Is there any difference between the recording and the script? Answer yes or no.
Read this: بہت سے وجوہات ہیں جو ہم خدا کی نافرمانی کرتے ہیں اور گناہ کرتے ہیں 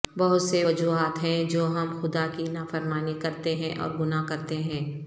no